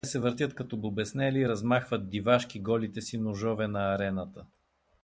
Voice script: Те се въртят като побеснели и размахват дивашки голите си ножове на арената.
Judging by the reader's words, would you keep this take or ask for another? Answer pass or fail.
pass